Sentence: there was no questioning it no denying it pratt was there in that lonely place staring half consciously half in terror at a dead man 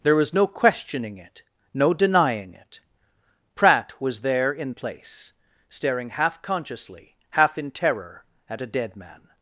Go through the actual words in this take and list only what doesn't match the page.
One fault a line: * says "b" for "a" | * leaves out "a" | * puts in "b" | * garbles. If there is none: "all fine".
* leaves out "that lonely"